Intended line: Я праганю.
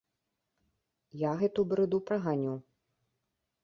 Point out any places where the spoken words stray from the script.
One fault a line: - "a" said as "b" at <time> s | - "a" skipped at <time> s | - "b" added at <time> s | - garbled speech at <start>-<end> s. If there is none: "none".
- "гэту брыду" added at 1.4 s